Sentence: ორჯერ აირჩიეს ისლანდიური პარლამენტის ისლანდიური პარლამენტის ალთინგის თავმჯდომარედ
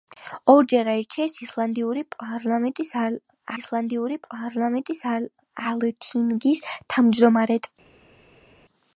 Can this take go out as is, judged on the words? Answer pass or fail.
pass